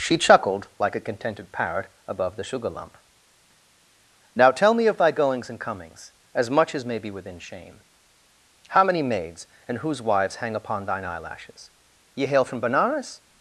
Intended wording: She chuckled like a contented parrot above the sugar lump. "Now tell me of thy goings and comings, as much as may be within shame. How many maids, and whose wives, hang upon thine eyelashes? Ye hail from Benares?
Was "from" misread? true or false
false